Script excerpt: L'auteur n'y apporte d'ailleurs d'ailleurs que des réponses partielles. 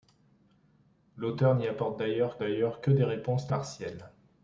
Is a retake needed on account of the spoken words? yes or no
no